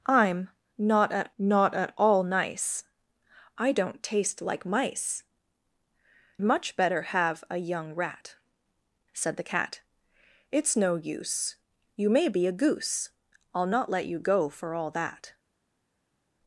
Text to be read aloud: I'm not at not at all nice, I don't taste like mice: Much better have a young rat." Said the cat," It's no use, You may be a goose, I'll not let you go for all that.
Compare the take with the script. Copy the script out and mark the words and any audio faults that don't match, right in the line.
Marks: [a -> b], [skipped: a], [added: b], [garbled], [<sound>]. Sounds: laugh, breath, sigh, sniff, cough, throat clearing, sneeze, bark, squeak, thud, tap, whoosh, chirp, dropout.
I'm not at not at all nice, I don't taste like mice: Much better have a young rat." Said the cat," It's no use, You may be a goose, I'll not let you go for all that.